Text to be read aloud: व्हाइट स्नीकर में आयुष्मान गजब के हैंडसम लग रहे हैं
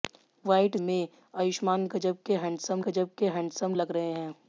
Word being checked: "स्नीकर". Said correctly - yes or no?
no